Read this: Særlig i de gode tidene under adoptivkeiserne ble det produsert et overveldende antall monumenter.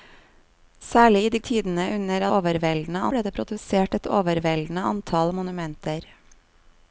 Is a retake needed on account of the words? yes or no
yes